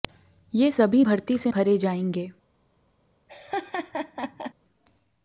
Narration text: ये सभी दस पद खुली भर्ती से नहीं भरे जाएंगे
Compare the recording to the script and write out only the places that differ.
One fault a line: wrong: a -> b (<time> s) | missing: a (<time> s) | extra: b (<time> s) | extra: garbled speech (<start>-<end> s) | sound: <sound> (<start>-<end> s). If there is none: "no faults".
missing: दस पद खुली (1.0 s)
missing: नहीं (1.5 s)
sound: laugh (3.3-4.5 s)